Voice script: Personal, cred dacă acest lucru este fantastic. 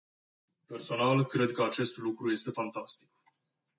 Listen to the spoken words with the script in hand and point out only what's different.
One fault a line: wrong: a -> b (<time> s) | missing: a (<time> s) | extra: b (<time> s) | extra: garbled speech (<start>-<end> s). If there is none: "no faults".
wrong: dacă -> că (1.5 s)